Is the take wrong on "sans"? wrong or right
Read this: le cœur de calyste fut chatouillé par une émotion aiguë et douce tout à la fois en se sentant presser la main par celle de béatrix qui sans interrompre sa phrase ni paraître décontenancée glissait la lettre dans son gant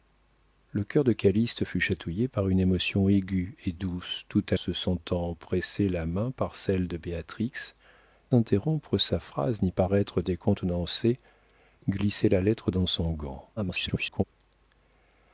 wrong